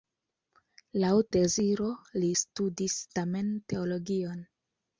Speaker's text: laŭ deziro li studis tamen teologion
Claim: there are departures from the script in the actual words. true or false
false